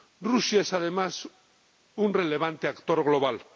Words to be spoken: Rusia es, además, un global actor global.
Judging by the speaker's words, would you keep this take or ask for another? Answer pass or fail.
fail